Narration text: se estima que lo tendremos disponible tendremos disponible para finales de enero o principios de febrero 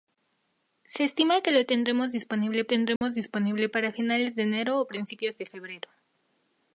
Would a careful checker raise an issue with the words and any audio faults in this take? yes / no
yes